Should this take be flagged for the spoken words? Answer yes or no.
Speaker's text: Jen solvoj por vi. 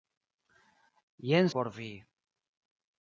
yes